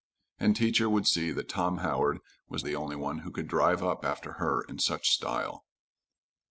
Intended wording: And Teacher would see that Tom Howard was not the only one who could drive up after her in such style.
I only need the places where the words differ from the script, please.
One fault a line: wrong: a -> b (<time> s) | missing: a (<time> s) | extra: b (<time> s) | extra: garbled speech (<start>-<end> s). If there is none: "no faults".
missing: not (2.6 s)